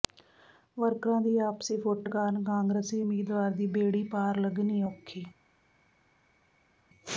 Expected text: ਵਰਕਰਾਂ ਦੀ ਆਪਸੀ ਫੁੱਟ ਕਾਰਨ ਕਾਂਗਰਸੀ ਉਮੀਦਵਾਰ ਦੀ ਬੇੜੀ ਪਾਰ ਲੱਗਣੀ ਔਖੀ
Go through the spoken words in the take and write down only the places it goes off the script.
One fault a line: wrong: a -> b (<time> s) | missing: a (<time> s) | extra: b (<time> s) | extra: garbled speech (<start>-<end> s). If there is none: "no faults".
no faults